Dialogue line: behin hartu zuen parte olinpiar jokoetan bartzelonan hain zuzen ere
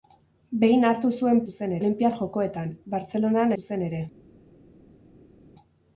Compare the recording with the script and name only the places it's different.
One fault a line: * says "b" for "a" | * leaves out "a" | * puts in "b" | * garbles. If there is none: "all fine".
* says "zuzen" for "parte"
* leaves out "hain"